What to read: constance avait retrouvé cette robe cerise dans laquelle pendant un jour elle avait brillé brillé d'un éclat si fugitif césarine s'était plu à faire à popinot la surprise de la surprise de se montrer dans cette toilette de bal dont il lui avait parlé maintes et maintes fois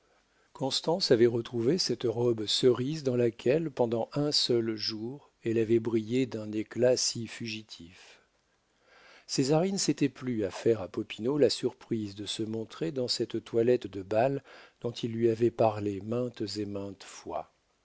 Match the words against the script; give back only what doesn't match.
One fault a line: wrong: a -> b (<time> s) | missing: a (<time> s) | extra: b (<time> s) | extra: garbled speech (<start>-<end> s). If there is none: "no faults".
extra: seul (4.3 s)
missing: brillé (6.2 s)
missing: la surprise de (12.3 s)